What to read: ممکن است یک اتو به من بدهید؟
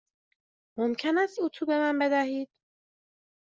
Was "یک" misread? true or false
true